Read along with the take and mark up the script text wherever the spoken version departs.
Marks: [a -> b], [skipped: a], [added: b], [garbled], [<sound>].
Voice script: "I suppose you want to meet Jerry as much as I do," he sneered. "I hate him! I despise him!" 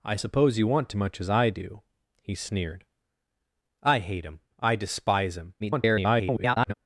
"I suppose you want to [skipped: meet Jerry as] much as I do," he sneered. "I hate him! I despise him!" [garbled]